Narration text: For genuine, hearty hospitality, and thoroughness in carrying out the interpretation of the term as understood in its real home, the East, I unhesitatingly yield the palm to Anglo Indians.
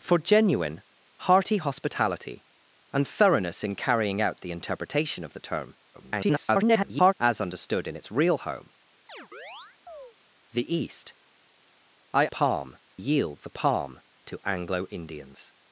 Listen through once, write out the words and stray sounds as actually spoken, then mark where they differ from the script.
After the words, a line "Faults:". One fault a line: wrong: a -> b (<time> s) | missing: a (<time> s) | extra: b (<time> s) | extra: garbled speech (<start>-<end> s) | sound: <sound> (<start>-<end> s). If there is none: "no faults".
For genuine, hearty hospitality, and thoroughness in carrying out the interpretation of the term [garbled] as understood in its real home, the East, I palm yield the palm to Anglo Indians.
Faults:
extra: garbled speech (5.9-7.1 s)
sound: chirp (9.1-10.1 s)
wrong: unhesitatingly -> palm (12.3 s)